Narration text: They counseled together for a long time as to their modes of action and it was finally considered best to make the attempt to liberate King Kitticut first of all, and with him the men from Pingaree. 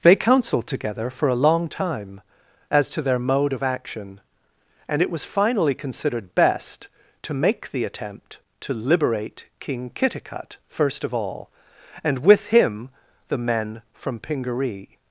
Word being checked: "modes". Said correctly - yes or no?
no